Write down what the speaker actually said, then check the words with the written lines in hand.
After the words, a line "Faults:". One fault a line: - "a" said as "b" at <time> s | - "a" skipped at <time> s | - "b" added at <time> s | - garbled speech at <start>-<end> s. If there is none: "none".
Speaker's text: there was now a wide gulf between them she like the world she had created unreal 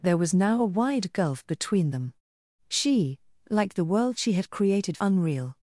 there was now a wide gulf between them she like the world she had created unreal
Faults:
none